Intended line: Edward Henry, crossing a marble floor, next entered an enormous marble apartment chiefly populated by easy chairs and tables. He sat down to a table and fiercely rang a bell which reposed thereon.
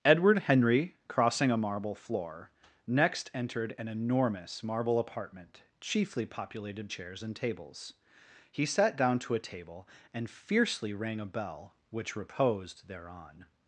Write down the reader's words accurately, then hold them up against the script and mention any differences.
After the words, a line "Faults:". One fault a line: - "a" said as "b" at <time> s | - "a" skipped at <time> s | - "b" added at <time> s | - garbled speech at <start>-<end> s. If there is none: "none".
Edward Henry, crossing a marble floor, next entered an enormous marble apartment chiefly populated chairs and tables. He sat down to a table and fiercely rang a bell which reposed thereon.
Faults:
- "by easy" skipped at 6.9 s